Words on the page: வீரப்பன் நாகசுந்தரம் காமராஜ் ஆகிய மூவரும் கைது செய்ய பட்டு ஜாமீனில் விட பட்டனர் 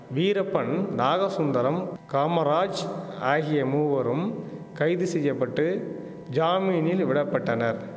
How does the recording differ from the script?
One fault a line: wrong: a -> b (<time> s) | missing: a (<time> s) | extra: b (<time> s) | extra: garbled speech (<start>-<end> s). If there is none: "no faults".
no faults